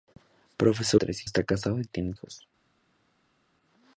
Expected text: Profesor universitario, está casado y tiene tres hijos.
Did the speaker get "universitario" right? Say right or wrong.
wrong